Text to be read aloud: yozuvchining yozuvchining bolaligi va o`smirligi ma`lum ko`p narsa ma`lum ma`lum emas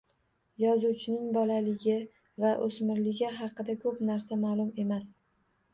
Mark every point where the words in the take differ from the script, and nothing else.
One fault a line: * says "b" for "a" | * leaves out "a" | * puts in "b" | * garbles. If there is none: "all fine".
* leaves out "yozuvchining"
* says "haqida" for "ma`lum"
* leaves out "ma`lum"